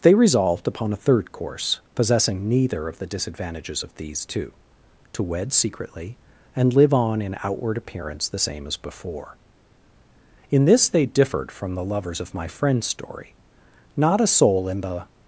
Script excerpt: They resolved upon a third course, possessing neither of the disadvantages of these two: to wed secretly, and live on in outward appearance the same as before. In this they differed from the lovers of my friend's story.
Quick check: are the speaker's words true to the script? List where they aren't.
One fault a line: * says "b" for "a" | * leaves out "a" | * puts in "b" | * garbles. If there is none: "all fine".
* puts in "Not a soul in the"